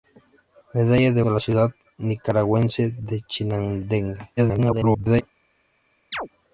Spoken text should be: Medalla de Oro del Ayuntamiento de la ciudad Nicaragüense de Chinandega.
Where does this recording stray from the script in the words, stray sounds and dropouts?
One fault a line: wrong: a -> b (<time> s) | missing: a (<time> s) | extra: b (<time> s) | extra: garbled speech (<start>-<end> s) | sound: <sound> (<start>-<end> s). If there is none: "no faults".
missing: Oro del Ayuntamiento (1.2 s)
extra: garbled speech (4.4-5.2 s)
sound: chirp (6.1-6.3 s)